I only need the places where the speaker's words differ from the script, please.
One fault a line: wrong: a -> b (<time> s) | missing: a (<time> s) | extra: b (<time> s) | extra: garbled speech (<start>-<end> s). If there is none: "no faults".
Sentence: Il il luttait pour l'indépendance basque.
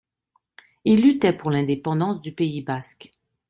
missing: il (1.0 s)
extra: du Pays (2.2 s)